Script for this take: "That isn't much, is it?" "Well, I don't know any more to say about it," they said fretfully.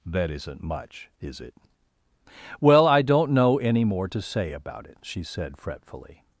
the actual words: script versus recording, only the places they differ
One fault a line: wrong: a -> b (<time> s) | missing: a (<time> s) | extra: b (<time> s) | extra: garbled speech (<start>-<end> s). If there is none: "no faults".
wrong: they -> she (5.0 s)